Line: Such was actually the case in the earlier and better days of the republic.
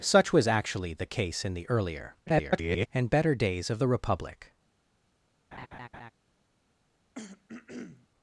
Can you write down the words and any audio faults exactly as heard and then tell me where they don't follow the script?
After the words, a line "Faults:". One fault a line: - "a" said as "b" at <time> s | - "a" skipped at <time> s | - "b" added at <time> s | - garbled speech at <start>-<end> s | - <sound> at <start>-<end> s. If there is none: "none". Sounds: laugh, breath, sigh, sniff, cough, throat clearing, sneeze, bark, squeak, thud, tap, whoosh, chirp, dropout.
Such was actually the case in the earlier [garbled] and better days of the republic.
Faults:
- garbled speech at 2.3-2.9 s
- laugh at 5.5-6.1 s
- throat clearing at 7.2-8.1 s